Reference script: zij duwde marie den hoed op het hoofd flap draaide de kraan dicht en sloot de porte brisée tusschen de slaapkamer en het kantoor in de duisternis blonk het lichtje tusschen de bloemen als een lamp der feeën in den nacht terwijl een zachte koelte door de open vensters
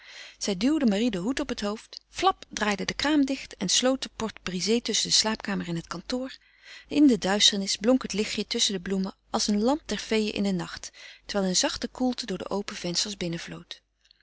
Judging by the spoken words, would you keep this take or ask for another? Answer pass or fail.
pass